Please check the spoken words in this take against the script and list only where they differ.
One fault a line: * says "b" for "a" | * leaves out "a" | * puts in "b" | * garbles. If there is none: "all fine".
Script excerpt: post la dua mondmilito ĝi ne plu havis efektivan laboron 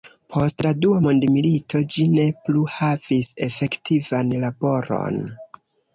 all fine